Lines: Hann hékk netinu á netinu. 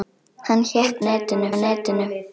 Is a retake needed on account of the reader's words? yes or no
no